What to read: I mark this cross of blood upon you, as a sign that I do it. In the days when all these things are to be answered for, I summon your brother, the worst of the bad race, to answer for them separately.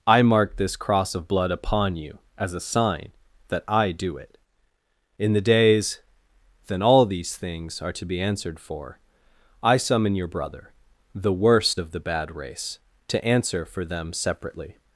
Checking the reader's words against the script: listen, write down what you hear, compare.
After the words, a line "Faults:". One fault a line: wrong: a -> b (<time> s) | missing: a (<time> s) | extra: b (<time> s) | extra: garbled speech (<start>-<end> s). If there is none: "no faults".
I mark this cross of blood upon you, as a sign that I do it. In the days then all these things are to be answered for, I summon your brother, the worst of the bad race, to answer for them separately.
Faults:
wrong: when -> then (6.7 s)